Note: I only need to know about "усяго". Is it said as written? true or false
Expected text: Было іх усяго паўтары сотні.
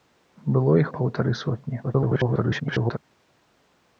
false